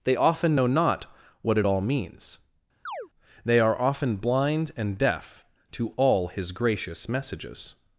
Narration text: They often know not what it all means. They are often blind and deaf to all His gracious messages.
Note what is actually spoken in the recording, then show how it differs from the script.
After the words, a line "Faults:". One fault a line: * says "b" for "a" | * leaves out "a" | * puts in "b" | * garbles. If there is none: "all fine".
They often know not what it all means. They are often blind and deaf to all His gracious messages.
Faults:
all fine